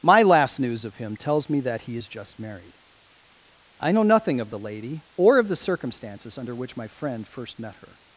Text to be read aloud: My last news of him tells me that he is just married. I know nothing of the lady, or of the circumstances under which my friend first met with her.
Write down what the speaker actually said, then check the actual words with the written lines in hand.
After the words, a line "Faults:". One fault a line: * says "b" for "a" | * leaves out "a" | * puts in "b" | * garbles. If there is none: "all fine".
My last news of him tells me that he is just married. I know nothing of the lady, or of the circumstances under which my friend first met her.
Faults:
* leaves out "with"